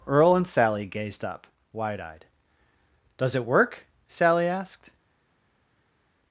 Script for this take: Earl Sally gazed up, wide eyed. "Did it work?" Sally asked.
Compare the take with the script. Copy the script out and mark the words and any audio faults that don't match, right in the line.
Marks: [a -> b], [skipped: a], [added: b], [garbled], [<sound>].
Earl [added: and] Sally gazed up, wide eyed. ["Did -> Does] it work?" Sally asked.